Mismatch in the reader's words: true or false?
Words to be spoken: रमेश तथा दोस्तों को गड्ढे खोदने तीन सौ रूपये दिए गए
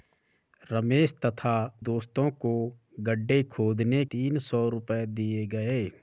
false